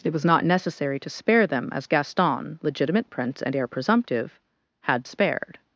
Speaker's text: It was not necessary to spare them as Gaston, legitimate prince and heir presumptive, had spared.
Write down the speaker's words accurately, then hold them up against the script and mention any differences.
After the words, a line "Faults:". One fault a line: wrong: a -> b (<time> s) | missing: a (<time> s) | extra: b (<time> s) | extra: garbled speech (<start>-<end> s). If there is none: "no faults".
It was not necessary to spare them as Gaston, legitimate prince and heir presumptive, had spared.
Faults:
no faults